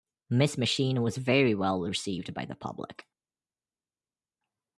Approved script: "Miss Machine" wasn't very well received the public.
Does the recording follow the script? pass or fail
fail